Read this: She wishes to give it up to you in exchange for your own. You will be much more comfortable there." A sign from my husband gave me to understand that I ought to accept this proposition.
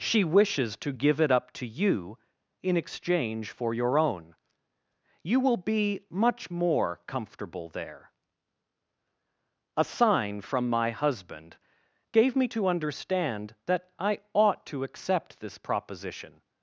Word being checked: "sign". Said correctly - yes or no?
yes